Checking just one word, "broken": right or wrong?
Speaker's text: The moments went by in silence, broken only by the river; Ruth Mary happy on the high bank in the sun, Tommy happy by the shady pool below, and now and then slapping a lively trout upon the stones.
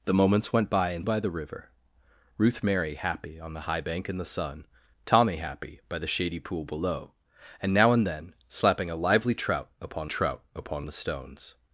wrong